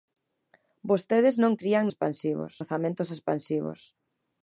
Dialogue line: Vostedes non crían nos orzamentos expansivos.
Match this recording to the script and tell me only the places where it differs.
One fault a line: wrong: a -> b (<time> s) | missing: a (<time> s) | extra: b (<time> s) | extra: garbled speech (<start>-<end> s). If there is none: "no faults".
wrong: nos -> expansivos (1.9 s)